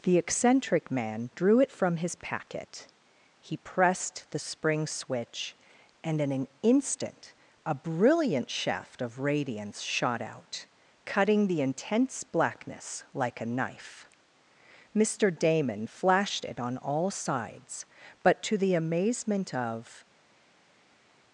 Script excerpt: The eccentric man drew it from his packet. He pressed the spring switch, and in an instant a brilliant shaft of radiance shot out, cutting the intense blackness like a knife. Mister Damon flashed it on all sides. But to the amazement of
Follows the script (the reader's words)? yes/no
yes